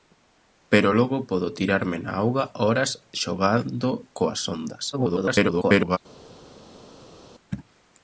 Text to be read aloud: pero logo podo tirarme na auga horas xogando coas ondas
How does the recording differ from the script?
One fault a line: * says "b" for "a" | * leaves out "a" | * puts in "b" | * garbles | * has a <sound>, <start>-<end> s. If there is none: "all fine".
* garbles